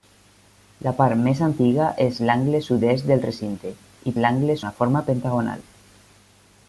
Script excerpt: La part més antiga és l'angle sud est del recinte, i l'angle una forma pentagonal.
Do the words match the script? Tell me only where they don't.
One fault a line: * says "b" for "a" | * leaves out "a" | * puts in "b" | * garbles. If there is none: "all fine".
all fine